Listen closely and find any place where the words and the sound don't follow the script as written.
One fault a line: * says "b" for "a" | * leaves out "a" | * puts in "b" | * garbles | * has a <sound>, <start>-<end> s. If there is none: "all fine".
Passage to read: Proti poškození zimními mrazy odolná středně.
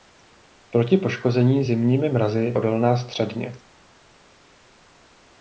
all fine